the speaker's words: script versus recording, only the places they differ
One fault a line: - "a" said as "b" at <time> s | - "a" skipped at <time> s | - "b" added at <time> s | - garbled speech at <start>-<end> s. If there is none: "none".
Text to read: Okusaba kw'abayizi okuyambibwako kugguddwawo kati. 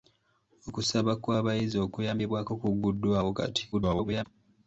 - garbled speech at 3.7-4.2 s